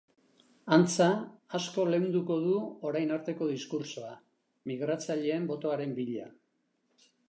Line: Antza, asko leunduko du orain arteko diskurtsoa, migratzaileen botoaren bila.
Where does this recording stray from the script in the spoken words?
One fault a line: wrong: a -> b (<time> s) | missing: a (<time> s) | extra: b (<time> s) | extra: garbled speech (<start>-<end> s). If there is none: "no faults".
no faults